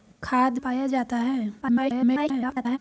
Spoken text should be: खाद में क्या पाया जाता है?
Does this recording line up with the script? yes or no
no